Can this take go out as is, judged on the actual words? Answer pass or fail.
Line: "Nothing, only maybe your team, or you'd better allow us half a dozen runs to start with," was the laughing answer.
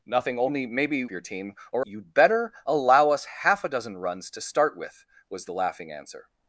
pass